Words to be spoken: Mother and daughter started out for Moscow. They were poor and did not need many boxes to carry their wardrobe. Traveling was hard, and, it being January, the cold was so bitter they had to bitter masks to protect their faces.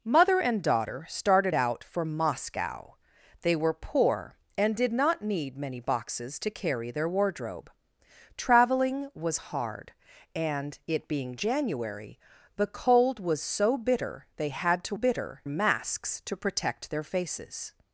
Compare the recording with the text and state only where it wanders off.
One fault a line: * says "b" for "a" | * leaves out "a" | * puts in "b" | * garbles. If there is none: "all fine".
all fine